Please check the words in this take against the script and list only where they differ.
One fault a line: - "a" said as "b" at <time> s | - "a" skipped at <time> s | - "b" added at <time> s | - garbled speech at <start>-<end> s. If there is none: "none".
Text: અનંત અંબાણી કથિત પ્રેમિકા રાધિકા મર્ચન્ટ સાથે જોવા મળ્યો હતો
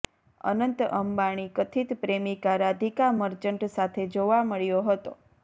none